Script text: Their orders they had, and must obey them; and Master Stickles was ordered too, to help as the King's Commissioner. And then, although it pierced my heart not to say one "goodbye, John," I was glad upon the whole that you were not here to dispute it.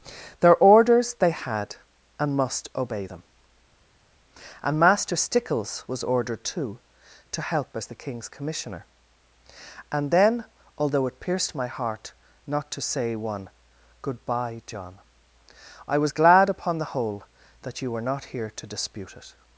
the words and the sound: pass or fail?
pass